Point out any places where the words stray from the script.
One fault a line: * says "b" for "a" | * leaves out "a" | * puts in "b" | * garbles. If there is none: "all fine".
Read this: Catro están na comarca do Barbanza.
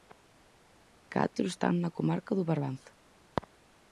all fine